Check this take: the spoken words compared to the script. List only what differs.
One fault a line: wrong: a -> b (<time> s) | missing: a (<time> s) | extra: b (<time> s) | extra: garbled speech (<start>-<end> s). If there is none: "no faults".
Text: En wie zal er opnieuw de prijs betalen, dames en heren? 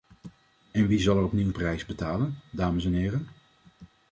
missing: de (1.5 s)